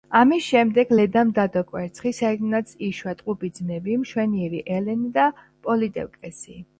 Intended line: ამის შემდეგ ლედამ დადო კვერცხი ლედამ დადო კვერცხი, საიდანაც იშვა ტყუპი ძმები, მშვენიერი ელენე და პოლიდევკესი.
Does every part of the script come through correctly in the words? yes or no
no